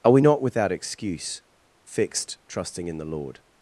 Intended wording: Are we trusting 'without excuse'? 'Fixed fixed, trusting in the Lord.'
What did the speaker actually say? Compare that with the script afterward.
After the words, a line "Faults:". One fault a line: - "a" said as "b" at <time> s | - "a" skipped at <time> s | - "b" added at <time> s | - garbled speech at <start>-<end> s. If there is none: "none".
Are we not 'without excuse'? 'Fixed, trusting in the Lord.'
Faults:
- "trusting" said as "not" at 0.2 s
- "fixed" skipped at 2.4 s